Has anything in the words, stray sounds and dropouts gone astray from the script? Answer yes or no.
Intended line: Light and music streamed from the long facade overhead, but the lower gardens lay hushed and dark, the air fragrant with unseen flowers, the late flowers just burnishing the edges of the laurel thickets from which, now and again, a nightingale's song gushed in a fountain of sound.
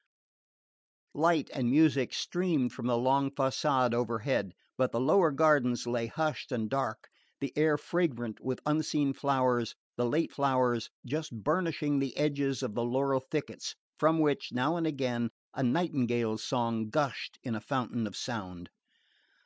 no